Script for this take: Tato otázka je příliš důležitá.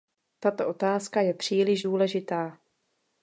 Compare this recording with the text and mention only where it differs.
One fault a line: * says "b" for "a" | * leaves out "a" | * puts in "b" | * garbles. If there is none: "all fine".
all fine